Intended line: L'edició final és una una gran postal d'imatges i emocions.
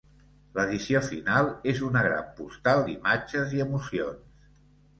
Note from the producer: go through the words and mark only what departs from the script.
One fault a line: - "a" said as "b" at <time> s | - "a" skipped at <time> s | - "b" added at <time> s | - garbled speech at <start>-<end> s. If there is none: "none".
- "una" skipped at 2.0 s